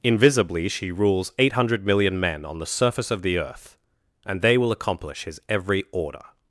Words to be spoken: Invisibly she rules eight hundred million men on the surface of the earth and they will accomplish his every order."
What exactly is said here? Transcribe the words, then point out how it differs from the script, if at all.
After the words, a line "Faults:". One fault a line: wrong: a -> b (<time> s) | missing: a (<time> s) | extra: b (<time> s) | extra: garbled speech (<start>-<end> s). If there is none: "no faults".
Invisibly she rules eight hundred million men on the surface of the earth and they will accomplish his every order."
Faults:
no faults